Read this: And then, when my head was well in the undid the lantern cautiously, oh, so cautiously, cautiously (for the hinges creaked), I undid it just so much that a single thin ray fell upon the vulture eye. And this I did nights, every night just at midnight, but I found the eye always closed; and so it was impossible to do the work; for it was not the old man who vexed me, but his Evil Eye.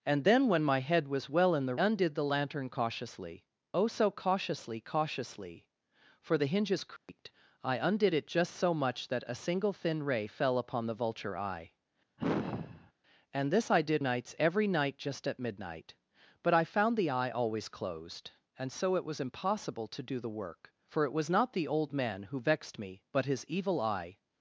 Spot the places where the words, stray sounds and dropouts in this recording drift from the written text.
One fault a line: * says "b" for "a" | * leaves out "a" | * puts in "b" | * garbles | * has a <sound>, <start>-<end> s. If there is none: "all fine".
* has a dropout, 7.0-7.1 s
* has a sigh, 12.2-12.9 s